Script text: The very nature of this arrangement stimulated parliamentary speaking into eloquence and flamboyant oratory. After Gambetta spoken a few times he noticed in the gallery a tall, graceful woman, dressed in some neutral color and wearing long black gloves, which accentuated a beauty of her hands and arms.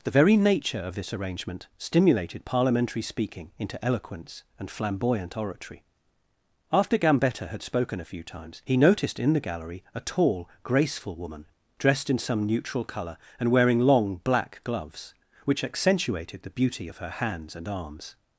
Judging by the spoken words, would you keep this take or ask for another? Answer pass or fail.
fail